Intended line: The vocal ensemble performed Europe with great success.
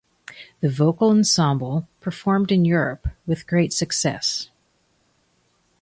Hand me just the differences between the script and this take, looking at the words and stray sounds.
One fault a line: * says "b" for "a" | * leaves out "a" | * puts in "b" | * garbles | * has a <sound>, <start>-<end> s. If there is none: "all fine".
* puts in "in"